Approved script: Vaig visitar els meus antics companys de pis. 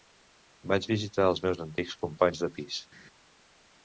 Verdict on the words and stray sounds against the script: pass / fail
pass